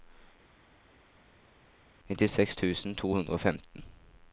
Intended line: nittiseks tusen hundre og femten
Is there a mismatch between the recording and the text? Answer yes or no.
yes